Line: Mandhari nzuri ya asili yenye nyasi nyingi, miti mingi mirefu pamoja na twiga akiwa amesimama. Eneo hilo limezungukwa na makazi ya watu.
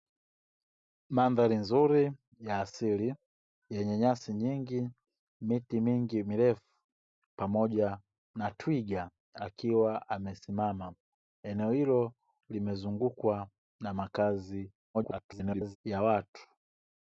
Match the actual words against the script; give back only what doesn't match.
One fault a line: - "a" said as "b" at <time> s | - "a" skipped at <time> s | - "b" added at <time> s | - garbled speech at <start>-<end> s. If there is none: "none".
- garbled speech at 14.9-15.8 s